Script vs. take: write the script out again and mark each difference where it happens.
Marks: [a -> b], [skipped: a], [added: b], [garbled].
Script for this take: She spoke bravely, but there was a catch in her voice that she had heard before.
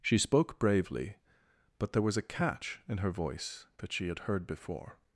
She spoke bravely, but there was a catch in her voice that she had heard before.